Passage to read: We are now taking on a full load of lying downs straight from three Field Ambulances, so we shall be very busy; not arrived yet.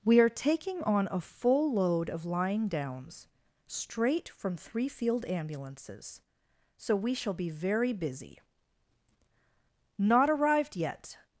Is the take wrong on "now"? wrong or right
wrong